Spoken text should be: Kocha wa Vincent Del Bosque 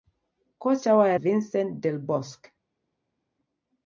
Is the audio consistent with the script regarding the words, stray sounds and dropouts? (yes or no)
yes